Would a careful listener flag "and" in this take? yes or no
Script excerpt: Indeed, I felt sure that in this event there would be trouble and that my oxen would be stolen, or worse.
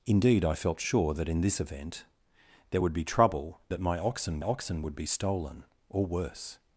yes